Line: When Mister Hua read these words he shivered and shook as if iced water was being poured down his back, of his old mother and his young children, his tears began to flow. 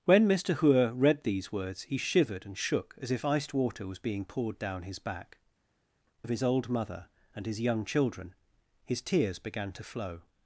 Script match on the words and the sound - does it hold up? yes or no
yes